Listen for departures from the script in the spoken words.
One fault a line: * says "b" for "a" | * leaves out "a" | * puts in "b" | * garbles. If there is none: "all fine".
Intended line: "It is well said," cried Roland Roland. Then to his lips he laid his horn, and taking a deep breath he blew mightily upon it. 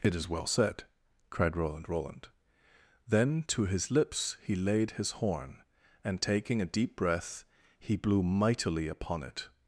all fine